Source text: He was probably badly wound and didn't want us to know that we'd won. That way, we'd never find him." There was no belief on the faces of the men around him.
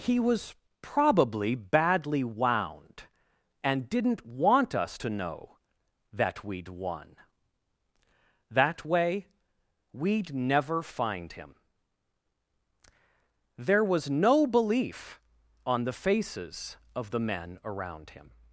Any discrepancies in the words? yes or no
no